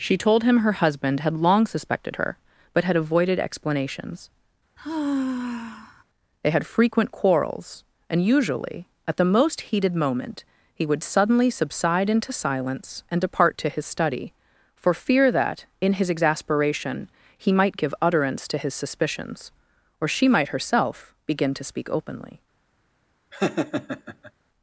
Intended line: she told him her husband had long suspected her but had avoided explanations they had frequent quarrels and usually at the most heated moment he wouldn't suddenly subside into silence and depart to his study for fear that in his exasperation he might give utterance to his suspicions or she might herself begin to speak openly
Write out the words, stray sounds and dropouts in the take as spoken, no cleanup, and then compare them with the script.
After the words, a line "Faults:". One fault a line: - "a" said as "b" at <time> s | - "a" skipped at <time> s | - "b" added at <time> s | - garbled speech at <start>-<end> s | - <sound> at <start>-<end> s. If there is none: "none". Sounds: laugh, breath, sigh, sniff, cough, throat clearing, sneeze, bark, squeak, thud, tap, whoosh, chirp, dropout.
she told him her husband had long suspected her but had avoided explanations they had frequent quarrels and usually at the most heated moment he would suddenly subside into silence and depart to his study for fear that in his exasperation he might give utterance to his suspicions or she might herself begin to speak openly
Faults:
- sigh at 4.8-6.0 s
- "wouldn't" said as "would" at 10.8 s
- laugh at 23.3-24.3 s